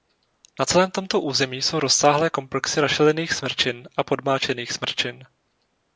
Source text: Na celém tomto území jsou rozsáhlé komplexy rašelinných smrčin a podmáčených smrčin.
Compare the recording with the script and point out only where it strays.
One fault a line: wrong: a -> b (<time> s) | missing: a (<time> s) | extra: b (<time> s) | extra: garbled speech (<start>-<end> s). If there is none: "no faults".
no faults